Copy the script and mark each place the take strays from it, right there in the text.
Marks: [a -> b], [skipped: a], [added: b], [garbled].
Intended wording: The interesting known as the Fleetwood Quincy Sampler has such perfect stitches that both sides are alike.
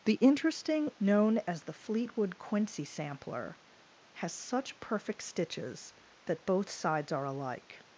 The interesting known as the Fleetwood Quincy Sampler has such perfect stitches that both sides are alike.